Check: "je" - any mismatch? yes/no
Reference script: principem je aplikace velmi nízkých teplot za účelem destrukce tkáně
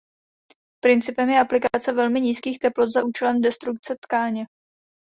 no